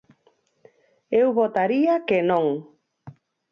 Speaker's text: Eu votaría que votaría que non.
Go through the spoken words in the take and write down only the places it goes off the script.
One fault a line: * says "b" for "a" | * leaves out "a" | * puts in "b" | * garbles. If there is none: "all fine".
* leaves out "votaría que"